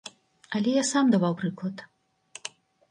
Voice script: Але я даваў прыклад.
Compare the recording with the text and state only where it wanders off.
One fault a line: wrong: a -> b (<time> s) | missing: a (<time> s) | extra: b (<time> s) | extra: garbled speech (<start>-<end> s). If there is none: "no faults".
extra: сам (0.9 s)